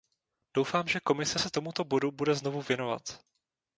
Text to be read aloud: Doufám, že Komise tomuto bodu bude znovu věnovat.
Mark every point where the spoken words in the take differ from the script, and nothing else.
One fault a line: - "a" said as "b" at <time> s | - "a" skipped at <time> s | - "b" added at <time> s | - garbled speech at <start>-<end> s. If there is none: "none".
- "se" added at 1.4 s